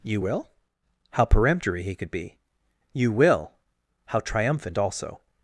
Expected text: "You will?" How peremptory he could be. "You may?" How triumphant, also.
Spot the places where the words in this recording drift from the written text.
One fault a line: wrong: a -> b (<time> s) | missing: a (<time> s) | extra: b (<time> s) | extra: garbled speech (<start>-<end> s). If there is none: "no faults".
wrong: may -> will (3.1 s)